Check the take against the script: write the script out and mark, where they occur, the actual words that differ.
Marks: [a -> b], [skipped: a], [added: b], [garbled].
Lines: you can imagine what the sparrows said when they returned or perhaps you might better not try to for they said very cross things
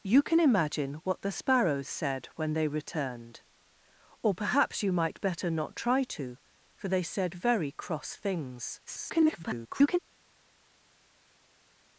you can imagine what the sparrows said when they returned or perhaps you might better not try to for they said very cross things [garbled]